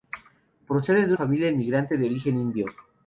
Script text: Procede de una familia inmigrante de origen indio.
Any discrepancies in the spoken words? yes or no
yes